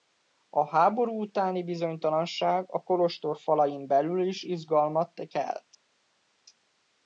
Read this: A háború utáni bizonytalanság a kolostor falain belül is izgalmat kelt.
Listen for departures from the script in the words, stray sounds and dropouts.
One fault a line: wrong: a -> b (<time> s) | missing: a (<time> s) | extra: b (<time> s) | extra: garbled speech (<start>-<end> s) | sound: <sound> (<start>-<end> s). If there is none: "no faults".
no faults